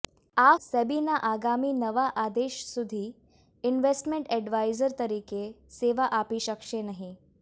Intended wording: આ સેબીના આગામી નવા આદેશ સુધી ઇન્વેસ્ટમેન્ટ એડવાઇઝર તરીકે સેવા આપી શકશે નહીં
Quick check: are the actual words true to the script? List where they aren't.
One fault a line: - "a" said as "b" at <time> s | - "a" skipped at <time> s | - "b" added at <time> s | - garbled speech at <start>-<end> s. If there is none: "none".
none